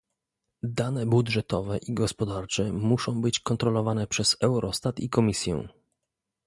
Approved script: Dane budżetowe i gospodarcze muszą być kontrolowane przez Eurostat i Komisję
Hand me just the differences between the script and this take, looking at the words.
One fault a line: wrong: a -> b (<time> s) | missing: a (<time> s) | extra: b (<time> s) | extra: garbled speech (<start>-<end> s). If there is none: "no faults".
no faults